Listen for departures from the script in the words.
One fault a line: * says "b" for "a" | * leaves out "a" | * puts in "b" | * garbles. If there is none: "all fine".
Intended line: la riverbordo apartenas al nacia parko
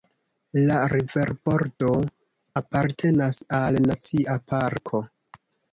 all fine